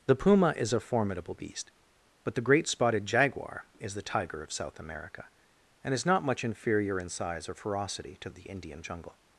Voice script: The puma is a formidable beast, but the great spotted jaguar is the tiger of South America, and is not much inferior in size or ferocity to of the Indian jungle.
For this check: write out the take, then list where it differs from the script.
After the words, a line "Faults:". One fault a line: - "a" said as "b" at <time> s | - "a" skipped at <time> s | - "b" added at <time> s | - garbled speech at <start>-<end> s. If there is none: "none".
The puma is a formidable beast, but the great spotted jaguar is the tiger of South America, and is not much inferior in size or ferocity to of the Indian jungle.
Faults:
none